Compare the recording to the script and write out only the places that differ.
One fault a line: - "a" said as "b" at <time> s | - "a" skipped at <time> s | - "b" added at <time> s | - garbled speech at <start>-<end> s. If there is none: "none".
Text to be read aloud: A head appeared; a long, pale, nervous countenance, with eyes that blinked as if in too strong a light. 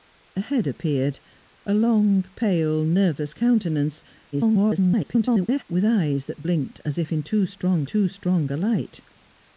- garbled speech at 4.3-5.6 s
- "too strong" added at 7.8 s